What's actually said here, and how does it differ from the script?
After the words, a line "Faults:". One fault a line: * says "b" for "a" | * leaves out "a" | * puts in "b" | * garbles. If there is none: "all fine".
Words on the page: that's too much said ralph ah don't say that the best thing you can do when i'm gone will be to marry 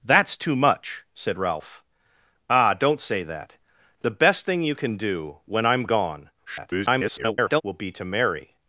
that's too much said ralph ah don't say that the best thing you can do when i'm gone [garbled] will be to marry
Faults:
* garbles